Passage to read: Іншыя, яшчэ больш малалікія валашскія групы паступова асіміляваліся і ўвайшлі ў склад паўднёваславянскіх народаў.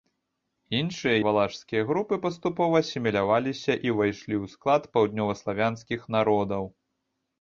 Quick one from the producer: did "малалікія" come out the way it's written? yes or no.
no